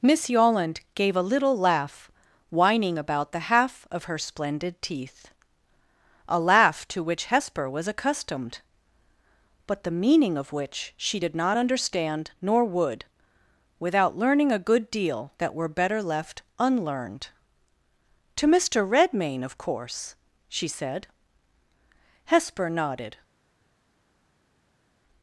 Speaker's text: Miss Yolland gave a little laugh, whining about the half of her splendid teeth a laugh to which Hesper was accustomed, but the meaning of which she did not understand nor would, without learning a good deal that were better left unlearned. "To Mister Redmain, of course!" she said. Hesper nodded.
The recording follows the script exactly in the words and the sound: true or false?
true